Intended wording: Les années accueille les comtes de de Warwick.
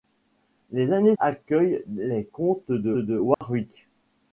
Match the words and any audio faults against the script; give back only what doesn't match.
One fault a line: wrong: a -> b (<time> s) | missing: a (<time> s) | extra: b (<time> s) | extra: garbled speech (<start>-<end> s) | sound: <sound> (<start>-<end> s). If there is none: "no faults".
sound: dropout (3.3-3.4 s)